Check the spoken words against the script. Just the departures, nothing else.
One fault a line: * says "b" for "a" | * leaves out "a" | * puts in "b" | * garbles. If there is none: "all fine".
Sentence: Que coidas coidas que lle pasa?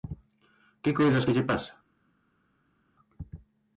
* leaves out "coidas"